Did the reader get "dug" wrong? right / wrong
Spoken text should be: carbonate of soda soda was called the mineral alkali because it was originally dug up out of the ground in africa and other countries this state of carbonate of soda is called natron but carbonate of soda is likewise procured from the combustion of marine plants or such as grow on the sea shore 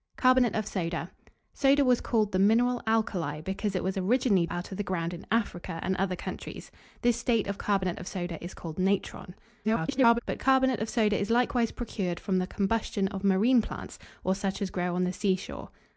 wrong